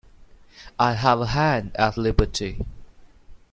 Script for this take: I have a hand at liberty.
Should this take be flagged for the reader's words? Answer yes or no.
no